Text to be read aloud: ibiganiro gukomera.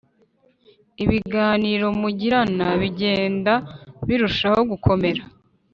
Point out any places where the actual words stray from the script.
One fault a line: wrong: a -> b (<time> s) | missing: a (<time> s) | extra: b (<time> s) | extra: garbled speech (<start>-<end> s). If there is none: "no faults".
extra: mugirana bigenda birushaho (2.0 s)